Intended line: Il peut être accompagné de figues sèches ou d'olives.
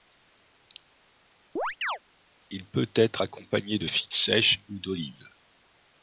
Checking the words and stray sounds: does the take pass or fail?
fail